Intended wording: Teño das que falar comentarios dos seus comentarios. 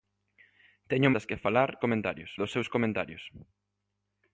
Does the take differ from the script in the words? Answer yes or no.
no